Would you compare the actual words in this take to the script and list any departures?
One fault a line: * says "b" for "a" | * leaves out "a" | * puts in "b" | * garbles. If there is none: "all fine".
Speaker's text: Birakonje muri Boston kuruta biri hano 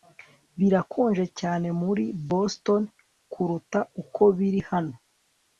* puts in "cyane"
* puts in "uko"